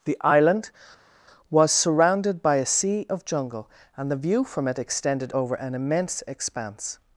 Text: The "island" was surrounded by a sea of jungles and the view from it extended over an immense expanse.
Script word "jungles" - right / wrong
wrong